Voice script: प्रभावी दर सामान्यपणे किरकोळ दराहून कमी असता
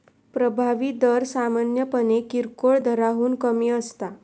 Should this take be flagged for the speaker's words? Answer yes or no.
no